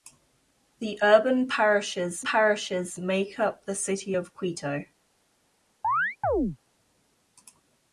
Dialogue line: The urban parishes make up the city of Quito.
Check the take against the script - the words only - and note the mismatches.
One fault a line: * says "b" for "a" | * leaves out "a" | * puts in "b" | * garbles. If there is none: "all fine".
* puts in "parishes"